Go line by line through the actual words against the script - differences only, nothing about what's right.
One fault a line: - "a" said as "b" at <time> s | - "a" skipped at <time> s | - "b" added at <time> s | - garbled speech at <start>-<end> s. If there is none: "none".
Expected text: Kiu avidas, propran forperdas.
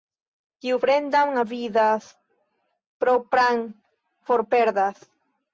- "fremdan" added at 0.8 s